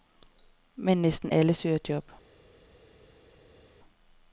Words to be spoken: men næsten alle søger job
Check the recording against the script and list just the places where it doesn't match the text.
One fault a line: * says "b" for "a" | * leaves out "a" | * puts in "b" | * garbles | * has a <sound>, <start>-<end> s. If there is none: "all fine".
all fine